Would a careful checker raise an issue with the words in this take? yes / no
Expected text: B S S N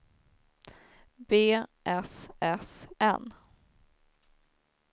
no